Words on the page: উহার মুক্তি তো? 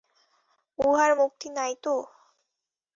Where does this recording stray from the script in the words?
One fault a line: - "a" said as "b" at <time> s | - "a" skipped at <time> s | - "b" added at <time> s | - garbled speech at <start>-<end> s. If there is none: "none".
- "নাই" added at 1.6 s